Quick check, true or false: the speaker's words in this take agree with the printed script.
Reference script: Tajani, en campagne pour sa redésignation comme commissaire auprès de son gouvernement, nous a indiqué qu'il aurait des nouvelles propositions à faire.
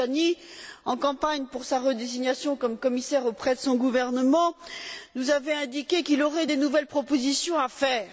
false